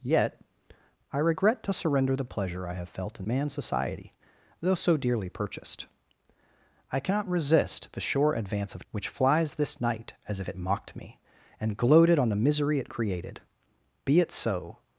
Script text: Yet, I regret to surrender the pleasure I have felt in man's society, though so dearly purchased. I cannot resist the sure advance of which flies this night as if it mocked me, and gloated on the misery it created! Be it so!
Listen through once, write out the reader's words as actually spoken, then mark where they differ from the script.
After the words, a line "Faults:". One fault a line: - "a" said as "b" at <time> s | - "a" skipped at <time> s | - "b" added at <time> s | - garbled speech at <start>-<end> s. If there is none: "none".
Yet, I regret to surrender the pleasure I have felt in man's society, though so dearly purchased. I cannot resist the sure advance of which flies this night as if it mocked me, and gloated on the misery it created! Be it so!
Faults:
none